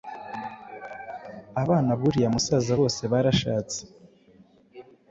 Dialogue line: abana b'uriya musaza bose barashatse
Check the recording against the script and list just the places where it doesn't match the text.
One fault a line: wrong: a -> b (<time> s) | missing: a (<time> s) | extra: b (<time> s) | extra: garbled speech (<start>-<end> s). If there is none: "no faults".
no faults